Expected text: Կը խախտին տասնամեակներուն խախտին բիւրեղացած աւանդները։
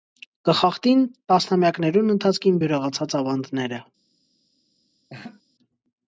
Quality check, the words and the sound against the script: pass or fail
fail